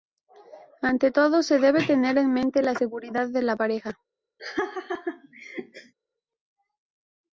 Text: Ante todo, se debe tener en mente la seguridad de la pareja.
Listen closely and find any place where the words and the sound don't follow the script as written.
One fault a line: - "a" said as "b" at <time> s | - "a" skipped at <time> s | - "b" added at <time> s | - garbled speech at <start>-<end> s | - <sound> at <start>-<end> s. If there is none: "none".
- laugh at 4.4-5.9 s